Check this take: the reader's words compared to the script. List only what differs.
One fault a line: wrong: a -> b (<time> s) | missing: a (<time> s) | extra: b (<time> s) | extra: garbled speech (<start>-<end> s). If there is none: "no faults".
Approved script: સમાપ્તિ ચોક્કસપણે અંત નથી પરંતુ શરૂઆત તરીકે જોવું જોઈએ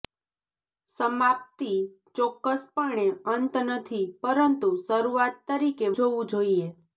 no faults